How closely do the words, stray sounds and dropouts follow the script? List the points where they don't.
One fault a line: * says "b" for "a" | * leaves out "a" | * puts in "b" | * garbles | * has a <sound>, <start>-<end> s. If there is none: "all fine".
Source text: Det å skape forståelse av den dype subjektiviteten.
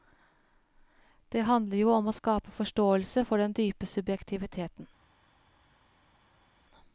* puts in "handler jo om"
* says "for" for "av"